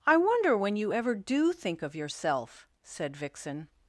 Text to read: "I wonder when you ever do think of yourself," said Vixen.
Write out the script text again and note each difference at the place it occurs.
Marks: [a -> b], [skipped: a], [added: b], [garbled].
"I wonder when you ever do think of yourself," said Vixen.